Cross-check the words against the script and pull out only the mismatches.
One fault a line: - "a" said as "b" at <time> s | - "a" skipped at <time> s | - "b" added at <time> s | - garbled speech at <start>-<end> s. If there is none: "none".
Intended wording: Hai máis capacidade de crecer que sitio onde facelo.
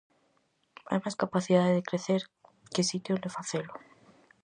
none